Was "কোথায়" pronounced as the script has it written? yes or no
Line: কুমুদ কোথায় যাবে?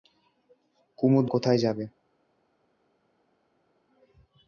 yes